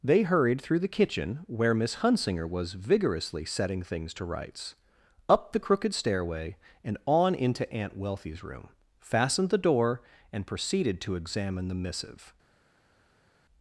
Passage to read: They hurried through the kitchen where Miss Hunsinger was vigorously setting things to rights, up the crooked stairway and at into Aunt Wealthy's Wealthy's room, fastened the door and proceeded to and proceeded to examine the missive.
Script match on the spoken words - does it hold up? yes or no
no